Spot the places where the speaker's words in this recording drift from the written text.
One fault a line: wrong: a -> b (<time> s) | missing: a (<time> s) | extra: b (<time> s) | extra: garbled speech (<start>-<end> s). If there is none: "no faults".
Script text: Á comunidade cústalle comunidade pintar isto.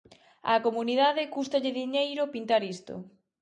wrong: comunidade -> diñeiro (1.8 s)